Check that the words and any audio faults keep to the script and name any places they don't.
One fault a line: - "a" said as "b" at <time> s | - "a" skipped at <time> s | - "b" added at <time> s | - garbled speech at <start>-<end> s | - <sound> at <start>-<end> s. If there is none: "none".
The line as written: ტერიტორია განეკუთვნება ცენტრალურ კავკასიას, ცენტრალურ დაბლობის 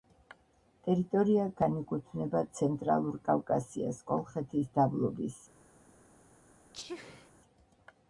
- "ცენტრალურ" said as "კოლხეთის" at 4.1 s
- sneeze at 6.7-7.3 s